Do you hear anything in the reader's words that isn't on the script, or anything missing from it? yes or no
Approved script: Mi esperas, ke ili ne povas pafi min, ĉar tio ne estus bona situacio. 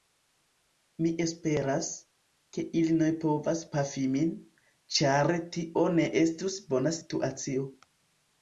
no